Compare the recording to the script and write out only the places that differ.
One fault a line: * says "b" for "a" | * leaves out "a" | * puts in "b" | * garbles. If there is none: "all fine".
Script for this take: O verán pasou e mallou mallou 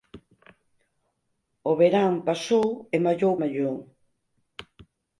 all fine